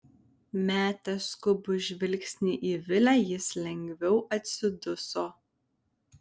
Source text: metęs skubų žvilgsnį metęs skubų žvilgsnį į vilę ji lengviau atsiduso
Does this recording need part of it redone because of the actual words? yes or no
yes